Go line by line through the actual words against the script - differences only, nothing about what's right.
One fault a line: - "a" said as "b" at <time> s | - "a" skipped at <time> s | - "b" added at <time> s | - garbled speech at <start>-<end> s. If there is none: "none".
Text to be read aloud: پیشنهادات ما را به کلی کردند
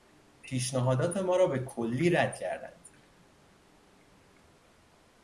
- "رد" added at 2.1 s